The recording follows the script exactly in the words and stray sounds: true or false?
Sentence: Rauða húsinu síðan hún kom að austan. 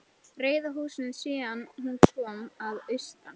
true